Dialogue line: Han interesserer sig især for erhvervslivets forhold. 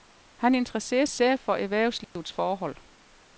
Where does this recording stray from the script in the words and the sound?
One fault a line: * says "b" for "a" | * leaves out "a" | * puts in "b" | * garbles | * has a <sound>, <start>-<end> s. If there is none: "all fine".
* leaves out "sig"
* has a dropout, 2.0-2.2 s